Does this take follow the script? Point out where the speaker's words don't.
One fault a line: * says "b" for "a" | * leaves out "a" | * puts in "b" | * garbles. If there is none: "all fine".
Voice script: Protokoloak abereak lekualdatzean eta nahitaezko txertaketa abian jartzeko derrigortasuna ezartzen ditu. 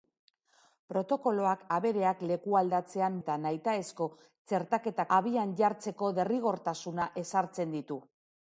all fine